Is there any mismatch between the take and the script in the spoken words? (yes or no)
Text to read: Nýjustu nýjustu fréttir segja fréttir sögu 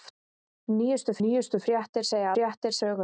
no